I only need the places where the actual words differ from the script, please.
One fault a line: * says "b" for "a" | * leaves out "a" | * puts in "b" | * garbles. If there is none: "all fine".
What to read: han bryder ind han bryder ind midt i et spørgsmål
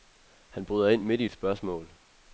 * leaves out "han bryder ind"